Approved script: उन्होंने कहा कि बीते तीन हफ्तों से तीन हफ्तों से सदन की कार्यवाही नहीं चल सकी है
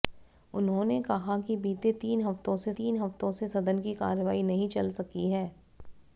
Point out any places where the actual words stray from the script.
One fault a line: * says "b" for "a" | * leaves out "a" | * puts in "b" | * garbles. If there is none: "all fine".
all fine